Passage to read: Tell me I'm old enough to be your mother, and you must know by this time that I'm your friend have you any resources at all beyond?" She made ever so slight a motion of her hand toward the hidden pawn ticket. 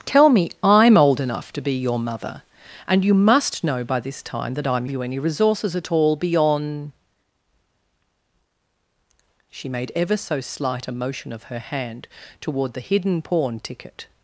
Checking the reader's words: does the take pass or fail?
fail